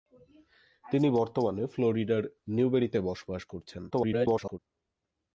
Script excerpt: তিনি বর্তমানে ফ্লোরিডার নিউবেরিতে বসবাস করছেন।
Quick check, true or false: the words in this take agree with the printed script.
false